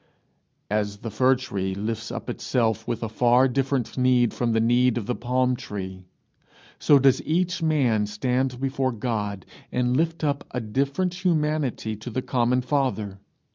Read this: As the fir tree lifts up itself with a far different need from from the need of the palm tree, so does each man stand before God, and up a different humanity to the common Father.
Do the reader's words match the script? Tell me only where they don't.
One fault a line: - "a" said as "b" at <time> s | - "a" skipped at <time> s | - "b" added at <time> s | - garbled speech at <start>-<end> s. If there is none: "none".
- "from" skipped at 4.5 s
- "lift" added at 10.0 s